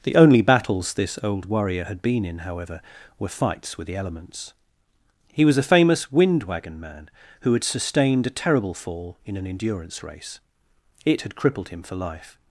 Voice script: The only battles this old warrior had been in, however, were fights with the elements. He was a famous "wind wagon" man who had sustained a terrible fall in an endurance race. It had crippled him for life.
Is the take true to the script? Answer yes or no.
yes